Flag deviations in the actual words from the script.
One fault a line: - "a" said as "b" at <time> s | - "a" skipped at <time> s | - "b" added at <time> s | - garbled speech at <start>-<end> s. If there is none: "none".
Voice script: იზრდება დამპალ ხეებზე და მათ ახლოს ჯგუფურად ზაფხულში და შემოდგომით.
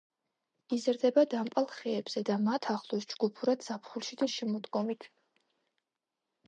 none